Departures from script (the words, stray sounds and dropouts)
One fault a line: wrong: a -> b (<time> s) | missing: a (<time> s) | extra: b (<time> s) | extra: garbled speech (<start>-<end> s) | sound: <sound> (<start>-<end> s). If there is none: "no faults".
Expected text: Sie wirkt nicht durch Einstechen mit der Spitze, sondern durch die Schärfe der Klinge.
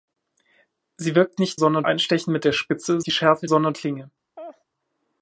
wrong: durch -> sondern (1.5 s)
missing: sondern durch (3.0 s)
wrong: der -> sondern (3.4 s)
sound: laugh (4.4-4.6 s)